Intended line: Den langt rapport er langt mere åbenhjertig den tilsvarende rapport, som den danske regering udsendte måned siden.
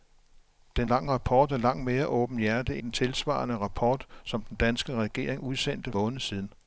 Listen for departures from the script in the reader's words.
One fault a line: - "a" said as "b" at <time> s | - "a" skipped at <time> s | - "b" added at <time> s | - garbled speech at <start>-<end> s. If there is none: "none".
none